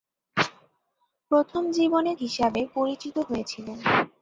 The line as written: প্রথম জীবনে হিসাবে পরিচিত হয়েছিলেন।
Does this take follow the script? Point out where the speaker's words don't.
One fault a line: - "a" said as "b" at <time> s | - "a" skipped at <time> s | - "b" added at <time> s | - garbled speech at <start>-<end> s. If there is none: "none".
none